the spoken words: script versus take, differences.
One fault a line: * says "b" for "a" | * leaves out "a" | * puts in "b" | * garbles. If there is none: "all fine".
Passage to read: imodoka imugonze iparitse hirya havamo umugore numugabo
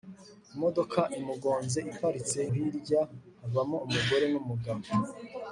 all fine